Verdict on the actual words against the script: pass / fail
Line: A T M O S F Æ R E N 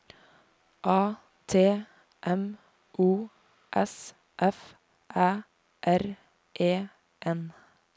pass